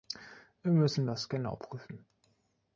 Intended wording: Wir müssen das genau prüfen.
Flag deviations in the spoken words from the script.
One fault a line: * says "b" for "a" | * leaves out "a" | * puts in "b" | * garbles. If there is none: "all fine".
all fine